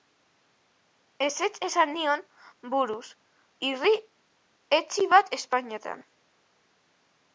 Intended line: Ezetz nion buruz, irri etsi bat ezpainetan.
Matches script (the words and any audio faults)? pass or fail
fail